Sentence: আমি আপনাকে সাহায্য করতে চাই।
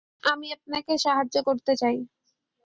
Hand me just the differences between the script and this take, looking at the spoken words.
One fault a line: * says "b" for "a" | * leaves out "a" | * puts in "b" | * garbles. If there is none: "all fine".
all fine